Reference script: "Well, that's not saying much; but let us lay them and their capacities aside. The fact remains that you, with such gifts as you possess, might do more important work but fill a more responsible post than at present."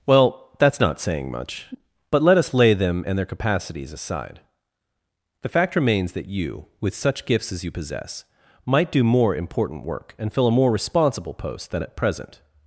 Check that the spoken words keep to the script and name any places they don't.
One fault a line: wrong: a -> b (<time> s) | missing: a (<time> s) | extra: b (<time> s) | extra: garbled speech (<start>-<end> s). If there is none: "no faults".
wrong: but -> and (10.2 s)